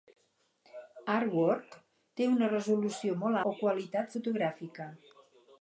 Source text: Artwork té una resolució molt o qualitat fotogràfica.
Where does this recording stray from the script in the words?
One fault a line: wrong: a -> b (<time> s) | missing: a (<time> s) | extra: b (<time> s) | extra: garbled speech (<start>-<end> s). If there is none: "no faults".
no faults